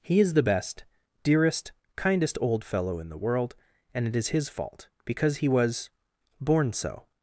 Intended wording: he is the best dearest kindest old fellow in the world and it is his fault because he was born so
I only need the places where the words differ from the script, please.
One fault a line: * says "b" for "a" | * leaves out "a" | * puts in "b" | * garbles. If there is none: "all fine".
all fine